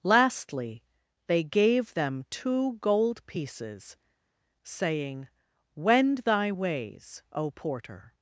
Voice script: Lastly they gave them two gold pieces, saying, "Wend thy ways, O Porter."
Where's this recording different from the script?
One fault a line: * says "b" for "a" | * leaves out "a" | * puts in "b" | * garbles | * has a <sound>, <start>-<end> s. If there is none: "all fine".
all fine